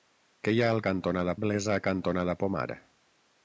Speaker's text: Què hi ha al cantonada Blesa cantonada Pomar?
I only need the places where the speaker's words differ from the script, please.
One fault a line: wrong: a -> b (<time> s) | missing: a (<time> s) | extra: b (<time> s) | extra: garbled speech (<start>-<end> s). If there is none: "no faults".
no faults